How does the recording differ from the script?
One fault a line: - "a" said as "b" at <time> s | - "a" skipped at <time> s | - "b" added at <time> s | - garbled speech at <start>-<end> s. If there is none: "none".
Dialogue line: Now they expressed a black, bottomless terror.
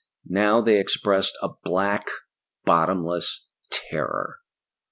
none